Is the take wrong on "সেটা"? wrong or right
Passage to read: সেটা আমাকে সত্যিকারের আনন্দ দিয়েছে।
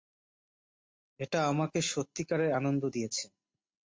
wrong